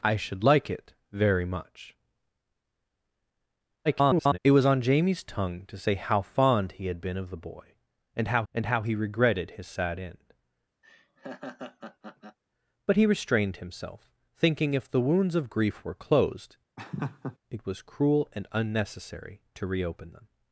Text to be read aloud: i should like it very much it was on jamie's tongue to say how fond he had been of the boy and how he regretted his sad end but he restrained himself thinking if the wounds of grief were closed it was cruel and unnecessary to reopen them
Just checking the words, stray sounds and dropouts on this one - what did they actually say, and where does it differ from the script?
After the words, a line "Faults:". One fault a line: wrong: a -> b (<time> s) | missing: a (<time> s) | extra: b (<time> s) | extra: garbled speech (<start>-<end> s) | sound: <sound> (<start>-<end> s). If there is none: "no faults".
i should like it very much [garbled] it was on jamie's tongue to say how fond he had been of the boy and how and how he regretted his sad end but he restrained himself thinking if the wounds of grief were closed it was cruel and unnecessary to reopen them
Faults:
extra: garbled speech (3.8-4.4 s)
extra: and how (8.5 s)
sound: laugh (10.8-12.4 s)
sound: laugh (16.8-17.4 s)